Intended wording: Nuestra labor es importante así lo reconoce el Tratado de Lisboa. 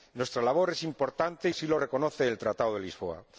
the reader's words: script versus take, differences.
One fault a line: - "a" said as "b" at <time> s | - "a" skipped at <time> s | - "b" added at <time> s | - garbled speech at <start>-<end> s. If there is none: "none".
none